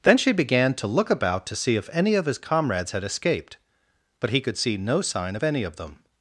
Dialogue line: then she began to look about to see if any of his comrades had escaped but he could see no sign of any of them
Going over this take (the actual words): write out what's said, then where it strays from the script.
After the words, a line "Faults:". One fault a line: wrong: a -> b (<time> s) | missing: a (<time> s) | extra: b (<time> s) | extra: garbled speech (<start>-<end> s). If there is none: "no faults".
then she began to look about to see if any of his comrades had escaped but he could see no sign of any of them
Faults:
no faults